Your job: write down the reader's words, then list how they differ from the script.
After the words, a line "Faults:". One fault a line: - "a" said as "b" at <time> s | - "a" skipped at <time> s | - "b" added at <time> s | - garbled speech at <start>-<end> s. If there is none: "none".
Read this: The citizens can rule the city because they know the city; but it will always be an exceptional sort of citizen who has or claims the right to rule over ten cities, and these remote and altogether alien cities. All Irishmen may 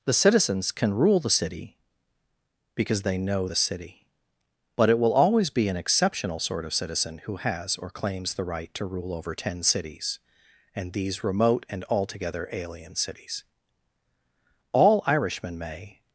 The citizens can rule the city because they know the city; but it will always be an exceptional sort of citizen who has or claims the right to rule over ten cities, and these remote and altogether alien cities. All Irishmen may
Faults:
none